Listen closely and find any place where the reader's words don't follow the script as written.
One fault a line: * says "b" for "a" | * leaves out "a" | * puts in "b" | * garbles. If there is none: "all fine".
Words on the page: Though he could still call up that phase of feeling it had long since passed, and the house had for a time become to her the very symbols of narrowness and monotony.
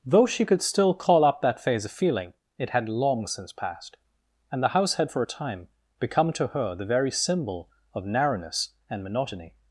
* says "she" for "he"
* says "symbol" for "symbols"